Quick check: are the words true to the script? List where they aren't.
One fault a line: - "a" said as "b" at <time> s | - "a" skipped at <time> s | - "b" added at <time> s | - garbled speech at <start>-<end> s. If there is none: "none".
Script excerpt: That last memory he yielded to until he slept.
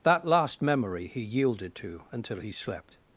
none